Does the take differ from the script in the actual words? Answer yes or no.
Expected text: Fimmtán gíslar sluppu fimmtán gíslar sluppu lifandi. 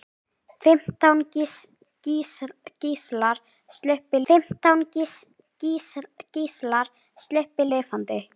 no